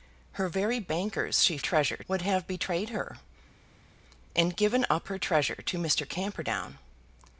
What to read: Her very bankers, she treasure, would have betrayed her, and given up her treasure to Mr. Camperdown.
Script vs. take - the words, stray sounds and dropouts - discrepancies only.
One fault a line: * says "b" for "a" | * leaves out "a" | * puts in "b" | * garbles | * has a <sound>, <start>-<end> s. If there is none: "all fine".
all fine